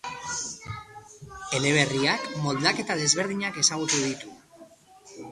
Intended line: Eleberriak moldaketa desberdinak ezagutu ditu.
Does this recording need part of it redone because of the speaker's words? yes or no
no